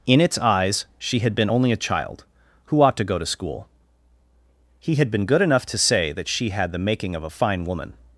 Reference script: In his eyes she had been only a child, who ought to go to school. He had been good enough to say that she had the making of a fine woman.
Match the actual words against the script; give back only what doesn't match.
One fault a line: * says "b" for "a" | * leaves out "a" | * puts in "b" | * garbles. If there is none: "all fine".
* says "its" for "his"